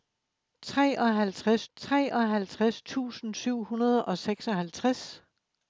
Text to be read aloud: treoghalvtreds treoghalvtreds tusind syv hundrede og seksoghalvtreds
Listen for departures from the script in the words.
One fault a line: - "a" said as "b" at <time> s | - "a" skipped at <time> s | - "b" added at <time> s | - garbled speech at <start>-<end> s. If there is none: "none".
none